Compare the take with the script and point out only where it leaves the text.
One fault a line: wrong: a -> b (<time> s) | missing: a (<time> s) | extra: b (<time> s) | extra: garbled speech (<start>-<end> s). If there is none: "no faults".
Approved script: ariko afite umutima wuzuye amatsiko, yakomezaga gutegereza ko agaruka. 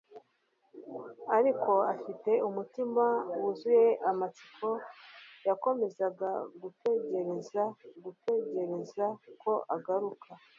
extra: gutegereza (8.0 s)